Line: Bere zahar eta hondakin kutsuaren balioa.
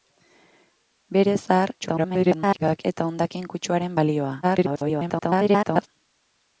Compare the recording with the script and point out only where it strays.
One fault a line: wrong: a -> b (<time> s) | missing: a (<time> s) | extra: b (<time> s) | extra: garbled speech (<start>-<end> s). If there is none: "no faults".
extra: garbled speech (1.8-2.8 s)
extra: garbled speech (4.4-5.9 s)